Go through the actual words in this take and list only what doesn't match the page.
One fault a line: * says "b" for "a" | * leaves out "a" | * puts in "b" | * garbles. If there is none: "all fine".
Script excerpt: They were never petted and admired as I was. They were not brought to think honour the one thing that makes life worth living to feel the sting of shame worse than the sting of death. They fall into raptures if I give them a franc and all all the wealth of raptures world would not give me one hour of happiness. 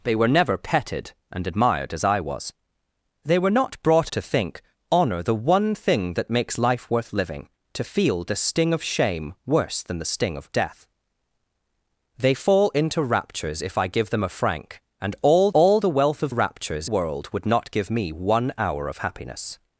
all fine